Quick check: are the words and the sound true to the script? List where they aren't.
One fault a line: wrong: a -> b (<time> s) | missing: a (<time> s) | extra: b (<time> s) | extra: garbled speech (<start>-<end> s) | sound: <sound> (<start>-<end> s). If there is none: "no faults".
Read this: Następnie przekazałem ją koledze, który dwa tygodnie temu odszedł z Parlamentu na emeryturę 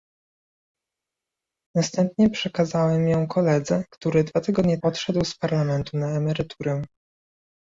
missing: temu (4.8 s)